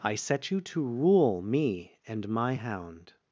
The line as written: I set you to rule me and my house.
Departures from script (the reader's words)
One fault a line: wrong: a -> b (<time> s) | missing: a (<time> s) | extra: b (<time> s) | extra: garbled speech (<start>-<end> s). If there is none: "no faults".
wrong: house -> hound (2.5 s)